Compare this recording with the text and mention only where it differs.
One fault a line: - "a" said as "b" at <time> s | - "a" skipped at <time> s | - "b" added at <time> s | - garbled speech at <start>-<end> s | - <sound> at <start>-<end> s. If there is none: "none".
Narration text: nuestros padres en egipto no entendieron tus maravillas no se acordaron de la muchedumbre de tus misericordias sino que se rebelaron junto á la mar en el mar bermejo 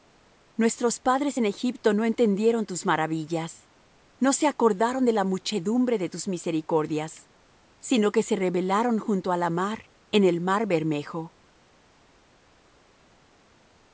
none